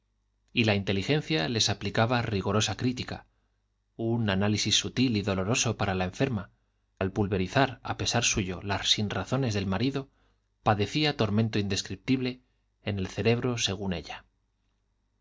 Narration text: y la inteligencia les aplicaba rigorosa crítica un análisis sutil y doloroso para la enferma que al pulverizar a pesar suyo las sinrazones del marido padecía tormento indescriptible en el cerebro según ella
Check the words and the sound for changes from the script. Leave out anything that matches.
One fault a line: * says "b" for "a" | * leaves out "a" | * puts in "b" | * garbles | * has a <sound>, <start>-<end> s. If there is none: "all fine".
* leaves out "que"